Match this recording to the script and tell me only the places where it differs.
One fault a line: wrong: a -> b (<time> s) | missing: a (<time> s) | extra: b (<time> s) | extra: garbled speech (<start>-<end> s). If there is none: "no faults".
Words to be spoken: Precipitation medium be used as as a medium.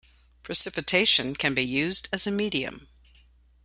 wrong: medium -> can (1.4 s)
missing: as (2.3 s)